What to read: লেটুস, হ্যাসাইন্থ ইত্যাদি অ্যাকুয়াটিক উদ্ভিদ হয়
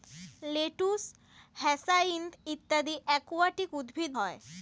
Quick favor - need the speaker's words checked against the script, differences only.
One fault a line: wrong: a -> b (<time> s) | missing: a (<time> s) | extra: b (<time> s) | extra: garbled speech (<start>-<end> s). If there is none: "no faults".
no faults